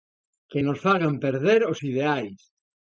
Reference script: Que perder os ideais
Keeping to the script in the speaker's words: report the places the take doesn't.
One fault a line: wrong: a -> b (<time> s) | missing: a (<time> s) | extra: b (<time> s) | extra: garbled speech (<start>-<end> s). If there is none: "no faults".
extra: nos fagan (0.7 s)